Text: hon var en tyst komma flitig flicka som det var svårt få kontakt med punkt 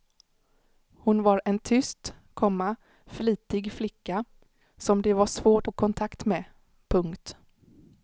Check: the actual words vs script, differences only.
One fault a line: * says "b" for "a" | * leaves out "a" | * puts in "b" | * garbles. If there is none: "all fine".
all fine